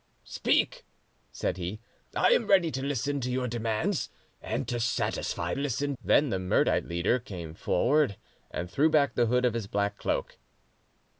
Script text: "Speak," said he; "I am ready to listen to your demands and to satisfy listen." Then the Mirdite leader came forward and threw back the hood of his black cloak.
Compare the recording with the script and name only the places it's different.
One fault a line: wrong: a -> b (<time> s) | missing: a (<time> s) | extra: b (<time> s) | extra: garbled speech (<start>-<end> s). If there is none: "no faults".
no faults